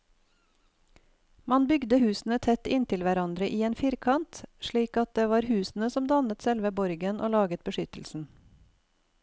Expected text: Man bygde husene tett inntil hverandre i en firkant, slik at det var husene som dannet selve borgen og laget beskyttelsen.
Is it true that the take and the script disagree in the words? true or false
false